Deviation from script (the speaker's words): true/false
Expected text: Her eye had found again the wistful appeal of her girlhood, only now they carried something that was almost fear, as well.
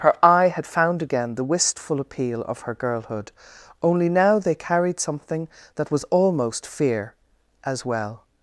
false